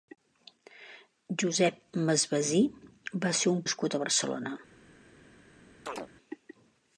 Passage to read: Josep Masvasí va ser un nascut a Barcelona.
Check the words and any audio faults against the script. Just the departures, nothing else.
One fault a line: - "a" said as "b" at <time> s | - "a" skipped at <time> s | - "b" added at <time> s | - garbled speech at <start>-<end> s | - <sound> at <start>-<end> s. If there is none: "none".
- chirp at 5.9-6.1 s